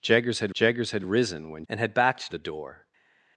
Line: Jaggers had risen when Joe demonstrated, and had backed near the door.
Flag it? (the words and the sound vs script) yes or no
yes